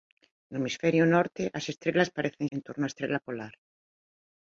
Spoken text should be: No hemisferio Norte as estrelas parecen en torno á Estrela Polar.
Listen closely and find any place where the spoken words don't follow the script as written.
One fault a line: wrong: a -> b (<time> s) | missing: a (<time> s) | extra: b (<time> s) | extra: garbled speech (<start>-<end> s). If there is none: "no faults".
no faults